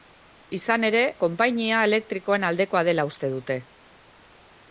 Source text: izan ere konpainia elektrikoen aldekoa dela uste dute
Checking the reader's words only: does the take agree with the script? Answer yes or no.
yes